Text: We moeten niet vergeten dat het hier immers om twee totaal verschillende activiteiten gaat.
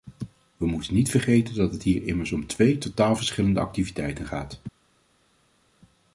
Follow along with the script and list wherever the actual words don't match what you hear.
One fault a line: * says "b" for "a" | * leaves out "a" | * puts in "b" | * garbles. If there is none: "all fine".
all fine